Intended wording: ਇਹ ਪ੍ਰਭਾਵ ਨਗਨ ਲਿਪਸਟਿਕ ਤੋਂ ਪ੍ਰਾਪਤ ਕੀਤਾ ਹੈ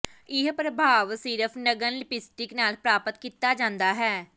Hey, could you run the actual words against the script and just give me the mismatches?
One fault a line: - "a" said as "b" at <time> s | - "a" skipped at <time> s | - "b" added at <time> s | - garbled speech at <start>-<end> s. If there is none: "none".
- "ਸਿਰਫ" added at 1.1 s
- "ਤੋਂ" said as "ਨਾਲ" at 2.5 s
- "ਜਾਂਦਾ" added at 3.5 s